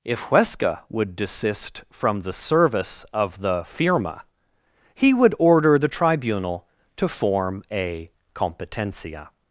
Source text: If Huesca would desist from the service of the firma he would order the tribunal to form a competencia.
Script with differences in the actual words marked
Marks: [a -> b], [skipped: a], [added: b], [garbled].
If Huesca would desist from the service of the firma he would order the tribunal to form a competencia.